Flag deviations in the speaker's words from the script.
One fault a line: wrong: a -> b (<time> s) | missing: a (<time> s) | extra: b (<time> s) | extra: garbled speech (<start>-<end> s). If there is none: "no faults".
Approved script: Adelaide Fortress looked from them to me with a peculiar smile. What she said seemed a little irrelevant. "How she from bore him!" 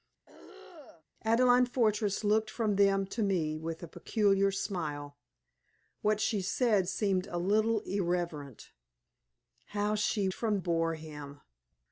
no faults